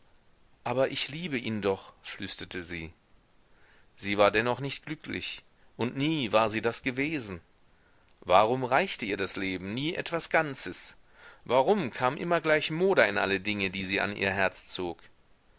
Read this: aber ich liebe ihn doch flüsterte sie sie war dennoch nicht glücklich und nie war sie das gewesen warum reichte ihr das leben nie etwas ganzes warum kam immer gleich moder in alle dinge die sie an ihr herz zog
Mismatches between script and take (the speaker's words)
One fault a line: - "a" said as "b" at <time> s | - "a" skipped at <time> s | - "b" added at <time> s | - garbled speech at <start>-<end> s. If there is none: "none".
none